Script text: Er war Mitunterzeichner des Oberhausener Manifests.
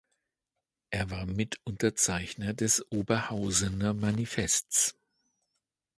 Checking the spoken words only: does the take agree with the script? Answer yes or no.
yes